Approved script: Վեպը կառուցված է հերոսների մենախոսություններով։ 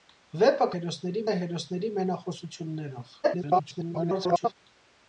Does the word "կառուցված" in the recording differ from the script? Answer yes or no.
yes